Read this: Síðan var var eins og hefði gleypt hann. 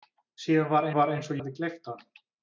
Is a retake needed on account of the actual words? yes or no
no